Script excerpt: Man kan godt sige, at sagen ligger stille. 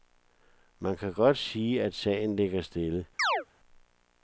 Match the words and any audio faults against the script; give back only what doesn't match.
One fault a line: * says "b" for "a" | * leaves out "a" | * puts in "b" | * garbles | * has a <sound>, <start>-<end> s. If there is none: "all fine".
* has a chirp, 3.2-3.5 s